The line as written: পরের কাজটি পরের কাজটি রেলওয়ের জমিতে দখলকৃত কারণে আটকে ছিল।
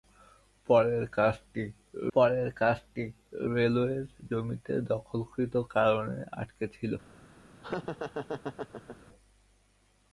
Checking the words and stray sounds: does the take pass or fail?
fail